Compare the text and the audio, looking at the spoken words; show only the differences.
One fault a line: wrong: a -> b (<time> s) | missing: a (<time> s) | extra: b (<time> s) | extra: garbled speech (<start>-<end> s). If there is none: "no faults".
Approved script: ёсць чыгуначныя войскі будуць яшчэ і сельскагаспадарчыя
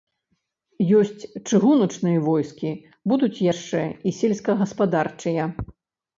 no faults